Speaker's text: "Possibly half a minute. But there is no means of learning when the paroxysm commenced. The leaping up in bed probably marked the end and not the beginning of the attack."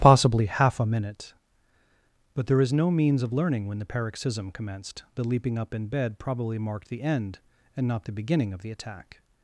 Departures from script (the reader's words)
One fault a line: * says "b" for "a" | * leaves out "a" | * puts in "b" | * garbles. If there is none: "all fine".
all fine